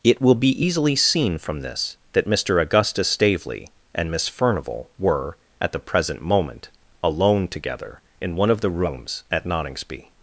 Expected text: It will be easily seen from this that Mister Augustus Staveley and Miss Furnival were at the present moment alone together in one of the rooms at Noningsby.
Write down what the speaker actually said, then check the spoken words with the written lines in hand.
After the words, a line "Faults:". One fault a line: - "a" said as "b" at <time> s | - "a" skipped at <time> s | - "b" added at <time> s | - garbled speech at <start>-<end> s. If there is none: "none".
It will be easily seen from this that Mister Augustus Staveley and Miss Furnival were at the present moment alone together in one of the rooms at Noningsby.
Faults:
none